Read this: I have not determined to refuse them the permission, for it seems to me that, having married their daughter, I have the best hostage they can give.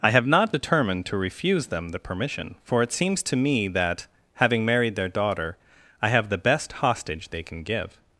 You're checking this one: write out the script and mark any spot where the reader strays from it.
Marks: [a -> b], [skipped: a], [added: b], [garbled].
I have not determined to refuse them the permission, for it seems to me that, having married their daughter, I have the best hostage they can give.